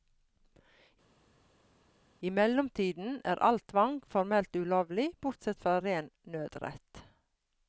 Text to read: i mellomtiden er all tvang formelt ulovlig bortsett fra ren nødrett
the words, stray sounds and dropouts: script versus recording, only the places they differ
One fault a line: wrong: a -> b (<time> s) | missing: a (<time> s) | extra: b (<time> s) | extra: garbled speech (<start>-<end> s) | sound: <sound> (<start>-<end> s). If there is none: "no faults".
no faults